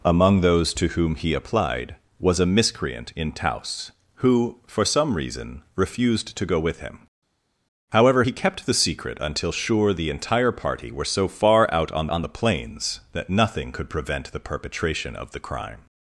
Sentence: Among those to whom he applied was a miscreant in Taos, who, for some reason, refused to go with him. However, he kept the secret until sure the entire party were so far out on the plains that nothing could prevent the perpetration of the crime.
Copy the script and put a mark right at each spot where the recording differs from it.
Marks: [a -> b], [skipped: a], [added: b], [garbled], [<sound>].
Among those to whom he applied was a miscreant in Taos, who, for some reason, refused to go with him. However, he kept the secret until sure the entire party were so far out on [added: on] the plains that nothing could prevent the perpetration of the crime.